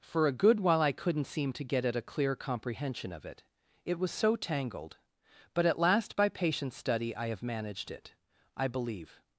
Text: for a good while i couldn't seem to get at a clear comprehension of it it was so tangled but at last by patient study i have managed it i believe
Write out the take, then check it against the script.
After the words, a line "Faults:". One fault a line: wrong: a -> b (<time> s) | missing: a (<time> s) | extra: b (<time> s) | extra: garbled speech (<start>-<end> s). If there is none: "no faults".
for a good while i couldn't seem to get at a clear comprehension of it it was so tangled but at last by patient study i have managed it i believe
Faults:
no faults